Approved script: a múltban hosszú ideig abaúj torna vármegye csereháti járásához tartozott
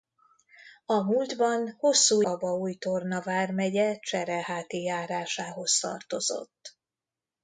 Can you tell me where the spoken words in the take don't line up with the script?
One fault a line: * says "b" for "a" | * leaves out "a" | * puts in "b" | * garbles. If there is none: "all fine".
* leaves out "ideig"